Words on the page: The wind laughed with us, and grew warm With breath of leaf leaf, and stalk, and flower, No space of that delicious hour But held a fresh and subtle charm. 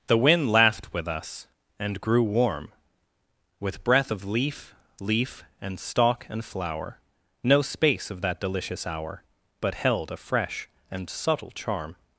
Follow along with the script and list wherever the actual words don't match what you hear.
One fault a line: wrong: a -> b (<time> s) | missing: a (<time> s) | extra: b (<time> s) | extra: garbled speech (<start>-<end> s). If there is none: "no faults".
no faults